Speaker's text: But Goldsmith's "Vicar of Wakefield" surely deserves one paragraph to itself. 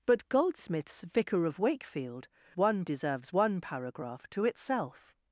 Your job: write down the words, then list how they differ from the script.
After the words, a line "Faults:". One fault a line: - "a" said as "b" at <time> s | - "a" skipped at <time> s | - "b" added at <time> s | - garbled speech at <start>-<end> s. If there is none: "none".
But Goldsmith's "Vicar of Wakefield" one deserves one paragraph to itself.
Faults:
- "surely" said as "one" at 2.6 s